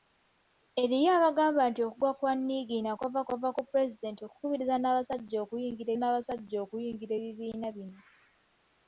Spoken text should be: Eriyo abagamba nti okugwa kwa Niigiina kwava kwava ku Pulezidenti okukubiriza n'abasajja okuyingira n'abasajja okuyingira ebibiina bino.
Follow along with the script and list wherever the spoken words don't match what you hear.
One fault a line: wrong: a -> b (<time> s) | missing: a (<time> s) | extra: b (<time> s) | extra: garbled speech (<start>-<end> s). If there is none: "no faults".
no faults